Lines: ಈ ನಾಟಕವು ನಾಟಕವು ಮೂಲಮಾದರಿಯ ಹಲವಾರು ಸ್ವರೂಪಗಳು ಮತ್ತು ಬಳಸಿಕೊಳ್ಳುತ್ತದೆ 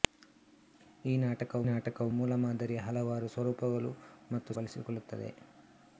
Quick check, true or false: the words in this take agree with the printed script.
true